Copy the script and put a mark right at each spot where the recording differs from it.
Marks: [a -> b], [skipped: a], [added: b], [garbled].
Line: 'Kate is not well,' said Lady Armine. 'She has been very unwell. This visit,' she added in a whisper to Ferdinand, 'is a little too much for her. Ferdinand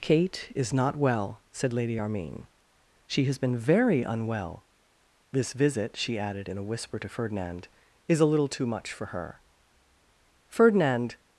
'Kate is not well,' said Lady Armine. 'She has been very unwell. This visit,' she added in a whisper to Ferdinand, 'is a little too much for her. Ferdinand